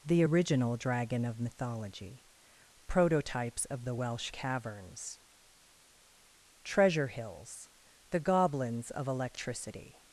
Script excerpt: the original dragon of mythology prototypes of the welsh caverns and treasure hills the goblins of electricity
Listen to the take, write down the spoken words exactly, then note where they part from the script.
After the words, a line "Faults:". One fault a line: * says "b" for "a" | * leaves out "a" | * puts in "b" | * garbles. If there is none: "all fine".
the original dragon of mythology prototypes of the welsh caverns treasure hills the goblins of electricity
Faults:
* leaves out "and"